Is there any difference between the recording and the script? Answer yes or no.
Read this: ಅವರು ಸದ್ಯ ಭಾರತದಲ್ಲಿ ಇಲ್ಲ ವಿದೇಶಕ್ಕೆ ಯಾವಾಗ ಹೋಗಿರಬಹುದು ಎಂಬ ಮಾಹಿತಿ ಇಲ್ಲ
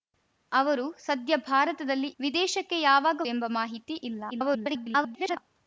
yes